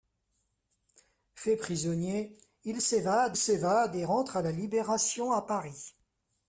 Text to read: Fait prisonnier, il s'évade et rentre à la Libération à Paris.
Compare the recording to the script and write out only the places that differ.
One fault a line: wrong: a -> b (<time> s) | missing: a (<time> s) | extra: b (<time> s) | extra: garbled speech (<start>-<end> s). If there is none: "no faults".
extra: s'évade (3.4 s)